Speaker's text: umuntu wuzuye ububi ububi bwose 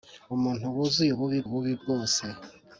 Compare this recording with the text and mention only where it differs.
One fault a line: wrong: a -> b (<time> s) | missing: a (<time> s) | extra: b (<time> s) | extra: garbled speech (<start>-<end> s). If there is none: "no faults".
no faults